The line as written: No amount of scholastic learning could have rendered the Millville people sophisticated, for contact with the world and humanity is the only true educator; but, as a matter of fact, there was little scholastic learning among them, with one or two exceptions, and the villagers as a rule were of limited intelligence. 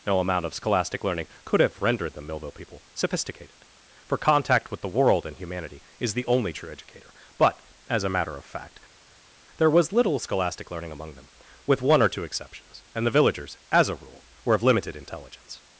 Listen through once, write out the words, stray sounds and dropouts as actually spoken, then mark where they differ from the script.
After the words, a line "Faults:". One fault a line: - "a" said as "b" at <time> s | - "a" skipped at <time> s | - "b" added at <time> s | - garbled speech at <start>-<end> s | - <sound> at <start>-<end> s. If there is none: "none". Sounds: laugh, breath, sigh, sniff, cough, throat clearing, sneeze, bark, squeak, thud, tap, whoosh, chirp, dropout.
No amount of scholastic learning could have rendered the Millville people sophisticated, for contact with the world and humanity is the only true educator; but, as a matter of fact, there was little scholastic learning among them, with one or two exceptions, and the villagers as a rule were of limited intelligence.
Faults:
none